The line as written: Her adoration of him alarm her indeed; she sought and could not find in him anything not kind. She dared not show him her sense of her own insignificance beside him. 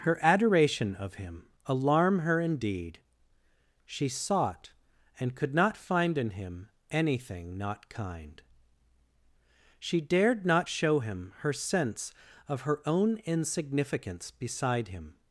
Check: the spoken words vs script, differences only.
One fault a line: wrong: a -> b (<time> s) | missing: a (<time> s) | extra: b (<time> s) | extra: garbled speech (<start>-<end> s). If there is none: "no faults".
no faults